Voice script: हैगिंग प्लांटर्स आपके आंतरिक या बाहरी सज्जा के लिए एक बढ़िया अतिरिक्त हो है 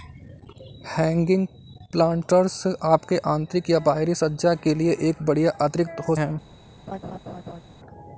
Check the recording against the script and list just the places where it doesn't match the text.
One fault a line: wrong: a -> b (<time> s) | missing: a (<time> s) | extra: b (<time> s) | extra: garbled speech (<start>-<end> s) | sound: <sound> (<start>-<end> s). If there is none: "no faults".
sound: laugh (6.9-7.6 s)